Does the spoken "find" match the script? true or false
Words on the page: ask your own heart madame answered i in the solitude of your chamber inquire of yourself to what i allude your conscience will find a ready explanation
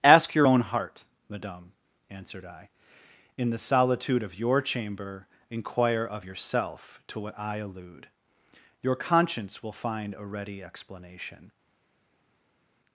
true